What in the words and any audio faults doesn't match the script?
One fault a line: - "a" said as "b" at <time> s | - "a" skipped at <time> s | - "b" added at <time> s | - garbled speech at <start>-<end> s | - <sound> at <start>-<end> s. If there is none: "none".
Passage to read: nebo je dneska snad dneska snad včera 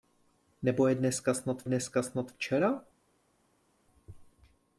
none